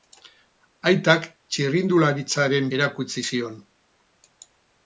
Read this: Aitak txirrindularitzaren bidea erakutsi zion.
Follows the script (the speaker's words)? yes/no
no